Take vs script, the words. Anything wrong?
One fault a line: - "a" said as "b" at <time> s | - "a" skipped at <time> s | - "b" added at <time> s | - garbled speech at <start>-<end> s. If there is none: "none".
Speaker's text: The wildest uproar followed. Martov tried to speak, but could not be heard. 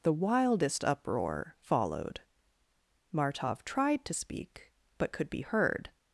- "not" skipped at 5.3 s